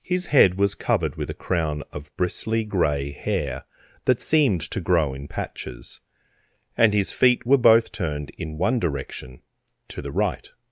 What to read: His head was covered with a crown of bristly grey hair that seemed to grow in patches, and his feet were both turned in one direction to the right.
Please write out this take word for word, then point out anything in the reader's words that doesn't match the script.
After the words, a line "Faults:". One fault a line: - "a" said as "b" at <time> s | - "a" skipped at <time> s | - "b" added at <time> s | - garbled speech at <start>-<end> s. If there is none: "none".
His head was covered with a crown of bristly grey hair that seemed to grow in patches, and his feet were both turned in one direction to the right.
Faults:
none